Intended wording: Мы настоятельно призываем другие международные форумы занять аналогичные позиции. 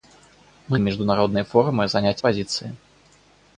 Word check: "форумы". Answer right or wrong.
right